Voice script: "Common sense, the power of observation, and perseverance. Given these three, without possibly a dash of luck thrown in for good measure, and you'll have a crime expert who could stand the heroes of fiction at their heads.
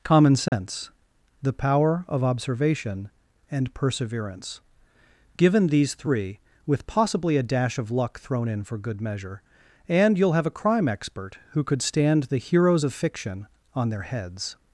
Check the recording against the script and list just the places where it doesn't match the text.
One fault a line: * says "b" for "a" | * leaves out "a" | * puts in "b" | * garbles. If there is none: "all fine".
* says "with" for "without"
* says "on" for "at"